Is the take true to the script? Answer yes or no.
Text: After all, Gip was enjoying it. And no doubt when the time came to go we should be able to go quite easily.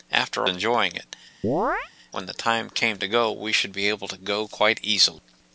no